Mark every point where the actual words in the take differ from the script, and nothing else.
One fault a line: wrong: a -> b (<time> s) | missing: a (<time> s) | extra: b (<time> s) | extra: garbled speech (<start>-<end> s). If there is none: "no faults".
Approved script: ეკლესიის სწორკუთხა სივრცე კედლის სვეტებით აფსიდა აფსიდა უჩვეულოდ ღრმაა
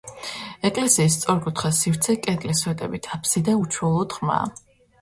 missing: აფსიდა (3.6 s)